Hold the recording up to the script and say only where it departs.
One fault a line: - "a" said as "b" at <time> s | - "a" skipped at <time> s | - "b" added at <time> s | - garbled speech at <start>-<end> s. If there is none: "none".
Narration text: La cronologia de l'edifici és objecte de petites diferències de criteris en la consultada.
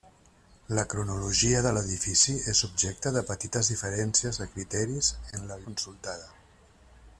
none